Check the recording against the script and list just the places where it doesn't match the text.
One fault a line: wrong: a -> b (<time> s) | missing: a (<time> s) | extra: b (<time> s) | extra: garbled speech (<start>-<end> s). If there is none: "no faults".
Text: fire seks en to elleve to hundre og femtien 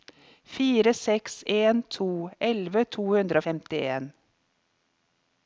no faults